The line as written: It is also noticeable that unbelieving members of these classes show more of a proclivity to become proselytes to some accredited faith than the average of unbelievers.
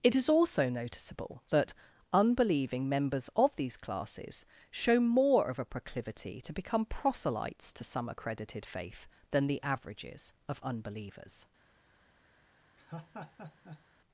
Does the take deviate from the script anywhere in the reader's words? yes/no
yes